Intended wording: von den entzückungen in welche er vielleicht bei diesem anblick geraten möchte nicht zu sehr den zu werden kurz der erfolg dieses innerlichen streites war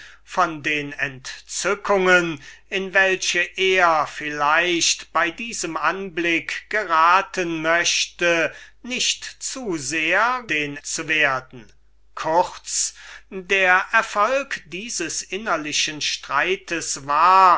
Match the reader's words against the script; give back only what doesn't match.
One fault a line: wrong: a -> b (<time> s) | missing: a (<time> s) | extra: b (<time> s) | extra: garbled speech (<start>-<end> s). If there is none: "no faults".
no faults